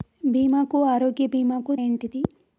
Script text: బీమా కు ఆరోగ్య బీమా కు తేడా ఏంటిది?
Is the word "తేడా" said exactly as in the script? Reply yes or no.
no